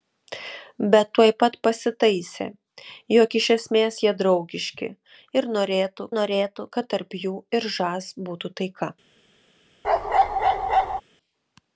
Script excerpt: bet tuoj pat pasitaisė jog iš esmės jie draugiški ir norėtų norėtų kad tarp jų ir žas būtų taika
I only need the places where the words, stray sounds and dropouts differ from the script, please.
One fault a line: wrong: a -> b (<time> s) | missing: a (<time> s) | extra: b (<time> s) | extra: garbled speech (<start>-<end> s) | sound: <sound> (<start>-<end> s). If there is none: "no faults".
sound: bark (9.8-11.0 s)